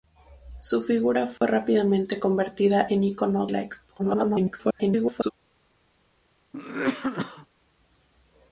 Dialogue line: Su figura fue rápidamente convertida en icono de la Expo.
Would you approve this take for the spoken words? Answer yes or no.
no